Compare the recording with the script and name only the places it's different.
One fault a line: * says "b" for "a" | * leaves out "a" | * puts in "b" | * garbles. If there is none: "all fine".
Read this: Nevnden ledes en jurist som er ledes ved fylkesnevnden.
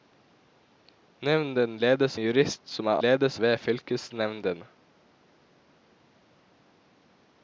all fine